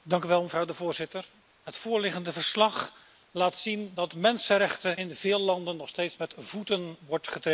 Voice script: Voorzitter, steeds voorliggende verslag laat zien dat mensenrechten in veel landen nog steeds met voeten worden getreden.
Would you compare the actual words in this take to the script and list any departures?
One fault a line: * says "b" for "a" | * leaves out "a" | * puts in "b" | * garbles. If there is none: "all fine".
* says "het" for "steeds"